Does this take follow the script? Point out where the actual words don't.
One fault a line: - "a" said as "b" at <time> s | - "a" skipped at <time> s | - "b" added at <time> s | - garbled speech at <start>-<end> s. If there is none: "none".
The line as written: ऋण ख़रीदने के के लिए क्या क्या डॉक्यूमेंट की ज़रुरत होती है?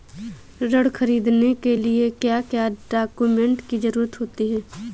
- "के" skipped at 1.8 s